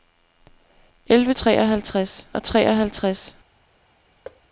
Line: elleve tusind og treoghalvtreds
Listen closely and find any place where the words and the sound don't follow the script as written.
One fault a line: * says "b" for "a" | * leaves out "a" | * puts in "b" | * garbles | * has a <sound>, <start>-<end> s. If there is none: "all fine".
* says "treoghalvtreds" for "tusind"
* has a thud, 4.2-4.4 s